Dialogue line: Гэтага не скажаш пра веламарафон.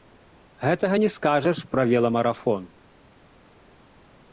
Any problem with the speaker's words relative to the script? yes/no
no